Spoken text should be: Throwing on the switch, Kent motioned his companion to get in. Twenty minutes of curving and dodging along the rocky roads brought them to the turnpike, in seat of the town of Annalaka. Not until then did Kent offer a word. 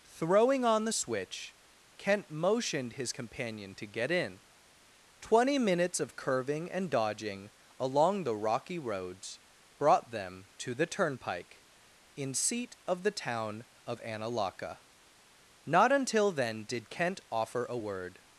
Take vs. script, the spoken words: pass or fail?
pass